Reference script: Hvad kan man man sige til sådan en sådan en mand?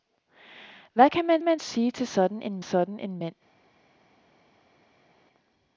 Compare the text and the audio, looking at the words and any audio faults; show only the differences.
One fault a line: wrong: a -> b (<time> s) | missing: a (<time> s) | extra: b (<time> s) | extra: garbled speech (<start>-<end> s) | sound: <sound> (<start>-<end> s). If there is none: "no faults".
no faults